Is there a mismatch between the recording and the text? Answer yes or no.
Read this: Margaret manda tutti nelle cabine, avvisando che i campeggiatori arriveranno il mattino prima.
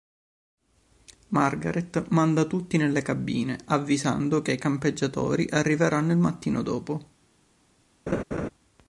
yes